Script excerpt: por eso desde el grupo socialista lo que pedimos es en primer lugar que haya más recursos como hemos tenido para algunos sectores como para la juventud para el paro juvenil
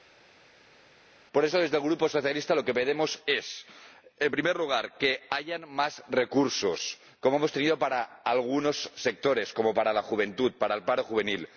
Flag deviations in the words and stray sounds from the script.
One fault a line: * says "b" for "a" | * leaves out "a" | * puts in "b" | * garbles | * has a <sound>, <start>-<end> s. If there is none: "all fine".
all fine